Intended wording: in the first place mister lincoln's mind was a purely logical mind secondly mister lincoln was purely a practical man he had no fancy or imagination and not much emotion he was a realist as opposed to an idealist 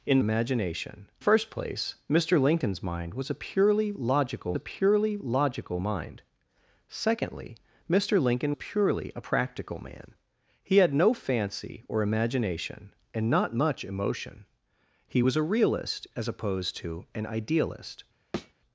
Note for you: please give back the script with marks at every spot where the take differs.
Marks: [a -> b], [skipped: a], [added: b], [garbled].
in [the -> imagination] first place mister lincoln's mind was a purely logical [added: a purely logical] mind secondly mister lincoln [skipped: was] purely a practical man he had no fancy or imagination and not much emotion he was a realist as opposed to an idealist